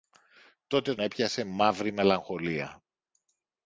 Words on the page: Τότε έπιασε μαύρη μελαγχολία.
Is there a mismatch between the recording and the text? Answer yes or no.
no